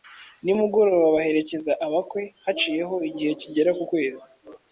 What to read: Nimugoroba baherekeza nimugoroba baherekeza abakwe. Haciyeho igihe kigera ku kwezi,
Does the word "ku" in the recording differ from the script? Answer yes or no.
no